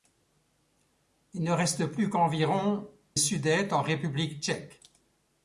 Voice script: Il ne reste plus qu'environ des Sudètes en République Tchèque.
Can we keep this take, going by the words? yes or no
no